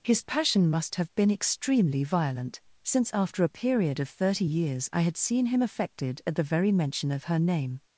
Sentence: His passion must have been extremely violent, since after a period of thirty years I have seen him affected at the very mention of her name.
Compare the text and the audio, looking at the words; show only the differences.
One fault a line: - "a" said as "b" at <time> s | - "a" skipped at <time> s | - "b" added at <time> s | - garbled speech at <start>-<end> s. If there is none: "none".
- "have" said as "had" at 5.0 s